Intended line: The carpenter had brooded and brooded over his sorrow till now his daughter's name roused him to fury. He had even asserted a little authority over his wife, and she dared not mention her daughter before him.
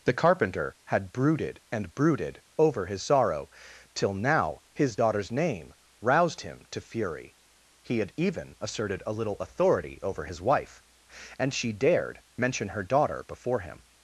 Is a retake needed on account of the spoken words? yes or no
yes